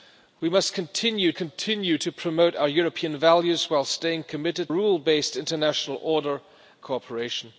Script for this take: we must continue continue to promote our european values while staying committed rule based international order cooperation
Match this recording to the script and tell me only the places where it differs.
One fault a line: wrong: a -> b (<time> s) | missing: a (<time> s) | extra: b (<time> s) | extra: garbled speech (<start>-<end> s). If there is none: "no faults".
no faults